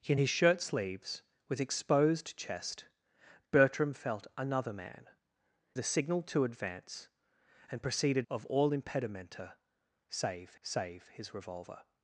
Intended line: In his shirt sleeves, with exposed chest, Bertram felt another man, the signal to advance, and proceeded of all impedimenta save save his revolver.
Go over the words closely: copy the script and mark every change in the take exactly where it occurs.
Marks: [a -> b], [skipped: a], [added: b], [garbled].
In his shirt sleeves, with exposed chest, Bertram felt another man, the signal to advance, and proceeded of all impedimenta save save his revolver.